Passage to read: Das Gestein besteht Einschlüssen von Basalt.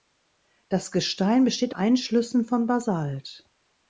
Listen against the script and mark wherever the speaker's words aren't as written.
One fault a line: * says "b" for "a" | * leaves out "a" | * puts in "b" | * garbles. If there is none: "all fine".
all fine